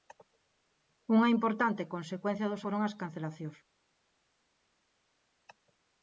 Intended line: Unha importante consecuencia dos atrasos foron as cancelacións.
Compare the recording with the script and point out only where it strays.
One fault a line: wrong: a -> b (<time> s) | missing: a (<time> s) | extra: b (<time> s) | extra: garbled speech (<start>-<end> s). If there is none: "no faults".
missing: atrasos (2.6 s)